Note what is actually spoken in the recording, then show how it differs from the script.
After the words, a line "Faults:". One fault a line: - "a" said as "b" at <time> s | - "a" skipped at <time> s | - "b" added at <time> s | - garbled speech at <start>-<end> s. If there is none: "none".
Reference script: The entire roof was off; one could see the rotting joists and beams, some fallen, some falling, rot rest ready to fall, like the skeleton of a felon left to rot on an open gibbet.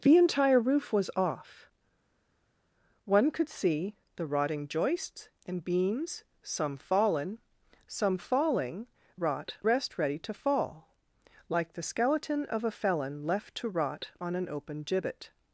The entire roof was off; one could see the rotting joists and beams, some fallen, some falling, rot rest ready to fall, like the skeleton of a felon left to rot on an open gibbet.
Faults:
none